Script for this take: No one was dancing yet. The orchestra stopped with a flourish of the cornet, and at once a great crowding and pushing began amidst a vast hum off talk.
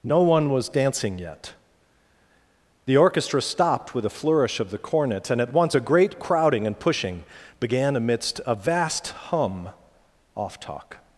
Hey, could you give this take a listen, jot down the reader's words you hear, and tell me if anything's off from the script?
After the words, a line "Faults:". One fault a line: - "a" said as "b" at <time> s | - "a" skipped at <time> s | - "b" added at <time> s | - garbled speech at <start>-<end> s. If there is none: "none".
No one was dancing yet. The orchestra stopped with a flourish of the cornet, and at once a great crowding and pushing began amidst a vast hum off talk.
Faults:
none